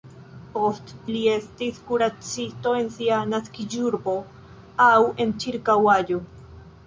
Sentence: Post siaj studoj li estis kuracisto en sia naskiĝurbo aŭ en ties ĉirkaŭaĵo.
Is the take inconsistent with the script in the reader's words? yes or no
yes